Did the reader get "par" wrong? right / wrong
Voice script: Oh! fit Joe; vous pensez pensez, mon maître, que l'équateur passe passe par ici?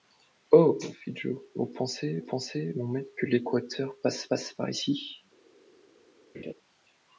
right